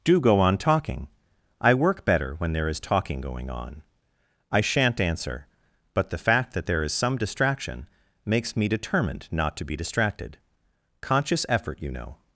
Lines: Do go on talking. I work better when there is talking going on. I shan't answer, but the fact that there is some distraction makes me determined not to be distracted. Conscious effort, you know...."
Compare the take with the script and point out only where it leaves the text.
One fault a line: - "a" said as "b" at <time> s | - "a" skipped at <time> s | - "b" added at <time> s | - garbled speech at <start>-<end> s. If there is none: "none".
none